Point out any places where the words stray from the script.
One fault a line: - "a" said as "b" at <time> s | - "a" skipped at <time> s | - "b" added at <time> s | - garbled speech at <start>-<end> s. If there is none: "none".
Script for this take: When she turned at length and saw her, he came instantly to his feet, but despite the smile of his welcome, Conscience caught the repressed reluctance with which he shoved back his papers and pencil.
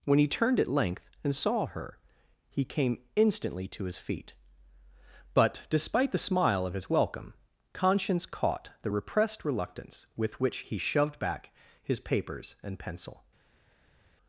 - "she" said as "he" at 0.2 s